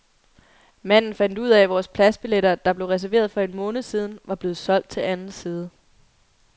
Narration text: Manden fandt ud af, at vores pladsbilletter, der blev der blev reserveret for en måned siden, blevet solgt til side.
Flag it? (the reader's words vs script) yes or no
yes